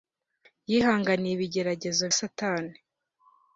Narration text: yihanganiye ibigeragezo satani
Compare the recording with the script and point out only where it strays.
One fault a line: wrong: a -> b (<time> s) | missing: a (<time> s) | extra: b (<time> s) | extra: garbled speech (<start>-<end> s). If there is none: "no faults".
no faults